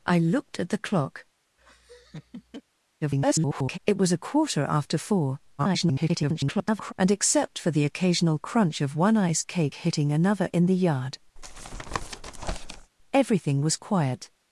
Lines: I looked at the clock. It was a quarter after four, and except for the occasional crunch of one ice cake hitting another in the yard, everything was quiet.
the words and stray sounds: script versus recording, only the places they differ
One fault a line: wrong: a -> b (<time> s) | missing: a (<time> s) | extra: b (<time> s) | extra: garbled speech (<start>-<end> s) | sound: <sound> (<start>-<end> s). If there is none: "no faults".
sound: laugh (1.6-2.6 s)
extra: garbled speech (3.0-3.8 s)
extra: garbled speech (5.6-6.9 s)
sound: tap (11.4-12.9 s)